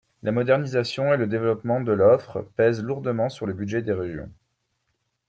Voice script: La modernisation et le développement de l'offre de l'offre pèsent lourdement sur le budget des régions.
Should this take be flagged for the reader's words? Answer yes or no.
yes